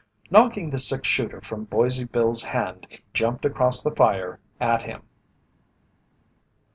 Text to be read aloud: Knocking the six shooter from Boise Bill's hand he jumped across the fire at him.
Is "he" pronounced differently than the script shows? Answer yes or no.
yes